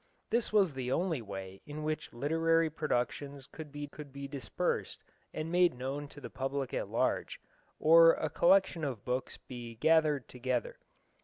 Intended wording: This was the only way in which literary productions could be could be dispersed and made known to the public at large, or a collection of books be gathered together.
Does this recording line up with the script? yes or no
yes